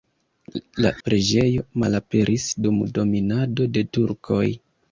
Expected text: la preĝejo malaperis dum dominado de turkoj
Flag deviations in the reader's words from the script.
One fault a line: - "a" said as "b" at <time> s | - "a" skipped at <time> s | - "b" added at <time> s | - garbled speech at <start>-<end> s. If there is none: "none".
none